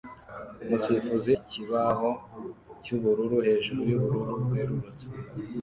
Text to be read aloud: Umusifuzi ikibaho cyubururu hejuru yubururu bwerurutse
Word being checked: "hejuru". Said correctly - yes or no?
yes